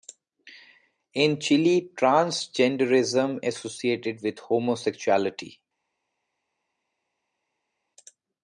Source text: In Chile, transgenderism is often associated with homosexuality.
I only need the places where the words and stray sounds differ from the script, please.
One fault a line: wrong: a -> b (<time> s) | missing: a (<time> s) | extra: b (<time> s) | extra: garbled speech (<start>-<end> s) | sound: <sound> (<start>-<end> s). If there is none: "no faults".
missing: is often (3.4 s)